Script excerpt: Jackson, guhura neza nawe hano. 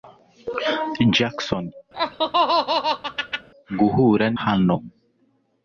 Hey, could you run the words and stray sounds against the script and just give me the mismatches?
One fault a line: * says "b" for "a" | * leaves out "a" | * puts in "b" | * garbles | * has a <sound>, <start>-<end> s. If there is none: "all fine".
* has a laugh, 1.9-3.5 s
* leaves out "neza nawe"